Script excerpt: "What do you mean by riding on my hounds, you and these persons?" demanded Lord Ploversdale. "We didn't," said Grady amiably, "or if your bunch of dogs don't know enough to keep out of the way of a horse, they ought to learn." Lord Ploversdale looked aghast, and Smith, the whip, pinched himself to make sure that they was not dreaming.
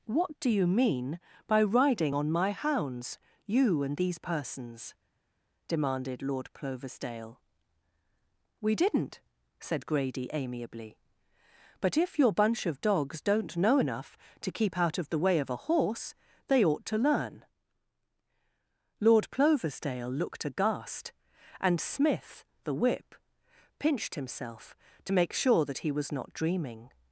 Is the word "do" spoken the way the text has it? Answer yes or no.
yes